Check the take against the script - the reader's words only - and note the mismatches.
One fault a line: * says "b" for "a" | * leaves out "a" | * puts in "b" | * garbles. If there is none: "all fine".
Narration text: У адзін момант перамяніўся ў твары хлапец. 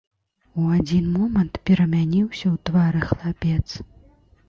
all fine